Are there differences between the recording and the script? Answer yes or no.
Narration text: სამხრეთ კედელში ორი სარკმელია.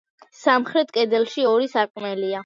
no